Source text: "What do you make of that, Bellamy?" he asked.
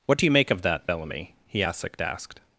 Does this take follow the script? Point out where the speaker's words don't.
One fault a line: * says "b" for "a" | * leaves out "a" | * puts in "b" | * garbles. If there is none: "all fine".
* puts in "asked"